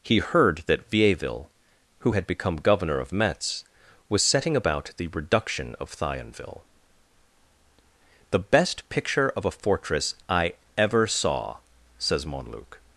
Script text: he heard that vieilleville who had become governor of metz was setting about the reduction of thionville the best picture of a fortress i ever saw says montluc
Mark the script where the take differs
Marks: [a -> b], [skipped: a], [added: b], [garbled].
he heard that vieilleville who had become governor of metz was setting about the reduction of thionville the best picture of a fortress i ever saw says montluc